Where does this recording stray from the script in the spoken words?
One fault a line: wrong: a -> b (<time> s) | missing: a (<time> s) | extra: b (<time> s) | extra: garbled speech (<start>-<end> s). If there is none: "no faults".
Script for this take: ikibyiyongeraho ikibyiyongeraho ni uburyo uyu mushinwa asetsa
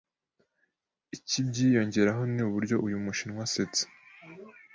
missing: ikibyiyongeraho (2.2 s)